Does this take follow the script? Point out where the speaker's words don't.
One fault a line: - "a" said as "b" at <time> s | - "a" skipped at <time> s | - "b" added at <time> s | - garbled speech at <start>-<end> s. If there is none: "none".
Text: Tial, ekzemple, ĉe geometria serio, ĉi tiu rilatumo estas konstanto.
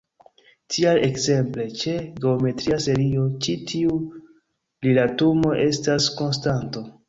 none